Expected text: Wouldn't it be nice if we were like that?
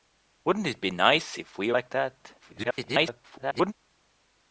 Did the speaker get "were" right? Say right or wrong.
wrong